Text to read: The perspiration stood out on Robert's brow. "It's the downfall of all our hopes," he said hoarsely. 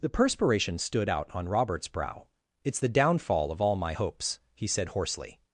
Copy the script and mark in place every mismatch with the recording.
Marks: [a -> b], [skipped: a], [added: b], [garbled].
The perspiration stood out on Robert's brow. "It's the downfall of all [our -> my] hopes," he said hoarsely.